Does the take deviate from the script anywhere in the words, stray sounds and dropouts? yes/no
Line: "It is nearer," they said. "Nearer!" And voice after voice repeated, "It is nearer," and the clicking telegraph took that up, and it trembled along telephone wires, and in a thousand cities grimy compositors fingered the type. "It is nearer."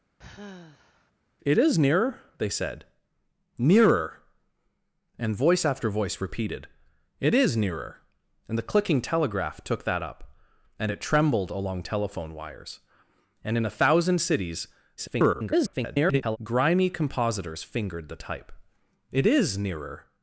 yes